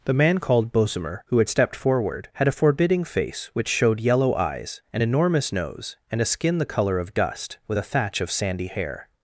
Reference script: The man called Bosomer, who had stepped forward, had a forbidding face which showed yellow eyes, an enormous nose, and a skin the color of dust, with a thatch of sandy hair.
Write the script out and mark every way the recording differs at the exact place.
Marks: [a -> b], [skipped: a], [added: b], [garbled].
The man called Bosomer, who had stepped forward, had a forbidding face which showed yellow eyes, an enormous nose, and a skin the color of dust, with a thatch of sandy hair.